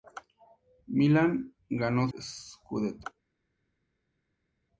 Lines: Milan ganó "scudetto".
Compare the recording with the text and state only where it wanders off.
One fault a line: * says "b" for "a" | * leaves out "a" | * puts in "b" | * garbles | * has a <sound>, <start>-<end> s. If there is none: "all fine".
all fine